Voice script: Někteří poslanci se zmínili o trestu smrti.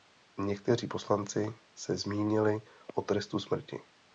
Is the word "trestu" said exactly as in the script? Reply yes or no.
yes